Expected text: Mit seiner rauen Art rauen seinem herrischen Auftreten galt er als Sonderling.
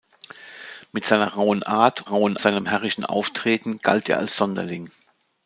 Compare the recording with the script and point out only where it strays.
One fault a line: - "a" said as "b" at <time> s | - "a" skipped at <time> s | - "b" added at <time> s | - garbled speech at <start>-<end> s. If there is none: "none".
none